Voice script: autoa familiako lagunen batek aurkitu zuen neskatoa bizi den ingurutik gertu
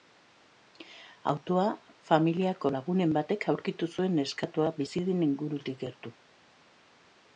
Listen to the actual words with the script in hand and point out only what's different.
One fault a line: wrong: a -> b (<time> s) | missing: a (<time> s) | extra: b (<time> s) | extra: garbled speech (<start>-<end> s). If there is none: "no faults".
no faults